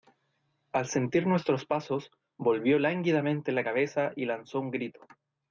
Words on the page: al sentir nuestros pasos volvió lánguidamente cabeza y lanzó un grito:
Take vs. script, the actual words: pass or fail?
fail